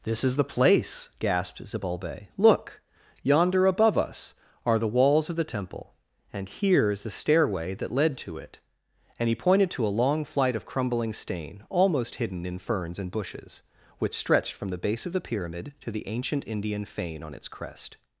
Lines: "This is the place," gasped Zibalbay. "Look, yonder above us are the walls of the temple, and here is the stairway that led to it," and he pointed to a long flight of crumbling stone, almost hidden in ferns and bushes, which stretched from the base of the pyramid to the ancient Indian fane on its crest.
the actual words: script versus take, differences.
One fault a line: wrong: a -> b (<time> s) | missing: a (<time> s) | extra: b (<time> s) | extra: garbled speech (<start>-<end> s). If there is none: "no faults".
wrong: stone -> stain (11.1 s)